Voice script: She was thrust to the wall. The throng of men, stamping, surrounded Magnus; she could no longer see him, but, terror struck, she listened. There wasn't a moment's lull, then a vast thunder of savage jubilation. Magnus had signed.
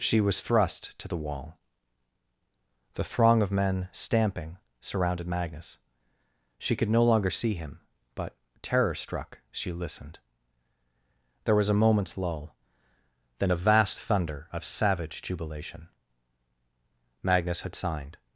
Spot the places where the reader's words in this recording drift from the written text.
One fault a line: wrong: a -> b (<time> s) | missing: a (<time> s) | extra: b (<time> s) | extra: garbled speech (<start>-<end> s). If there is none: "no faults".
wrong: wasn't -> was (11.5 s)